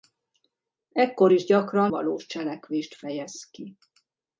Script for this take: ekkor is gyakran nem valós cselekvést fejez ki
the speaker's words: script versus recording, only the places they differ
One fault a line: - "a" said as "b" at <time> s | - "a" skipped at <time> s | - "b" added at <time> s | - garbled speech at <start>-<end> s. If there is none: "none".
- "nem" skipped at 1.9 s